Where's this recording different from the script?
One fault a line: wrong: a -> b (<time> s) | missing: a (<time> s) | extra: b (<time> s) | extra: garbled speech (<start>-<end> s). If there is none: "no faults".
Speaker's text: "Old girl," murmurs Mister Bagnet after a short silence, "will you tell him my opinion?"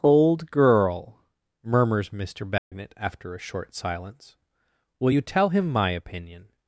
no faults